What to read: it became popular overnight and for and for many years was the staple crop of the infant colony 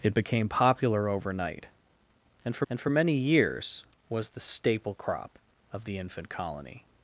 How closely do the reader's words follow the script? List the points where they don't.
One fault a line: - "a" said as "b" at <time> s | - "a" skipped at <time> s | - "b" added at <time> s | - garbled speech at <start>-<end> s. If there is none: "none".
none